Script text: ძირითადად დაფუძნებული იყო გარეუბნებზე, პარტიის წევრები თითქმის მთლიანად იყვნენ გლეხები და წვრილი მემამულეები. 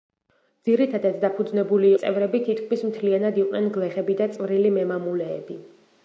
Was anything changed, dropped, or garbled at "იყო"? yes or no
yes